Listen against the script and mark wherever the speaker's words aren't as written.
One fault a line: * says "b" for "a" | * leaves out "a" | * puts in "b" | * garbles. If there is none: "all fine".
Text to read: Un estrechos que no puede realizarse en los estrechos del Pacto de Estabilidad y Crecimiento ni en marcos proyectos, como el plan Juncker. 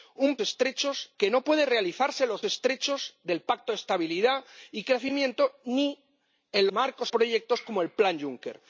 all fine